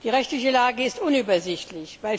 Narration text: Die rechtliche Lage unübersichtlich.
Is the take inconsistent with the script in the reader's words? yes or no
yes